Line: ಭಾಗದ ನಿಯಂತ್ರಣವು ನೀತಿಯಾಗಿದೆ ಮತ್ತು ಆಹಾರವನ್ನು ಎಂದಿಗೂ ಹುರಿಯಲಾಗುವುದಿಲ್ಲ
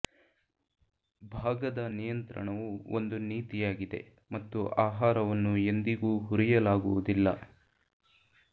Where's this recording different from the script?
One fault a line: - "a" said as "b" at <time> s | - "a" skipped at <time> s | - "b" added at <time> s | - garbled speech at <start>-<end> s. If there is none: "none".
- "ಒಂದು" added at 3.0 s